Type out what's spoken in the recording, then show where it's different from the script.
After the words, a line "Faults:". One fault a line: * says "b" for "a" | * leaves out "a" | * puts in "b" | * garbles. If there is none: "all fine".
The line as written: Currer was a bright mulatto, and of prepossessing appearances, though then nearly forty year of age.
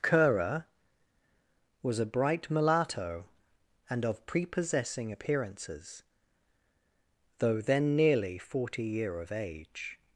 Currer was a bright mulatto, and of prepossessing appearances, though then nearly forty year of age.
Faults:
all fine